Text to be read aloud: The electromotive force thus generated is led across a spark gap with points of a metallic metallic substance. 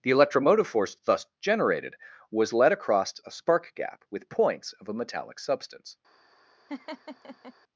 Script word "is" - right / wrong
wrong